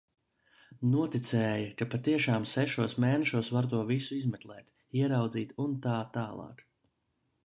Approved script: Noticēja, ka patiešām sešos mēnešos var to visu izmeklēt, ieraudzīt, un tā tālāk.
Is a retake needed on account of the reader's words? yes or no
no